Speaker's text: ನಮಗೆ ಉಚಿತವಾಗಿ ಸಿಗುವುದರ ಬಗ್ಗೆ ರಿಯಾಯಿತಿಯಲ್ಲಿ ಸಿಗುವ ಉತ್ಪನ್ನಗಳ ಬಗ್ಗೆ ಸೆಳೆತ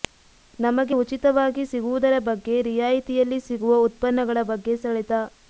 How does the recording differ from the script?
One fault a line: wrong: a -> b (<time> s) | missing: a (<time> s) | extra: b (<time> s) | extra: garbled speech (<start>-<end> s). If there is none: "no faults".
no faults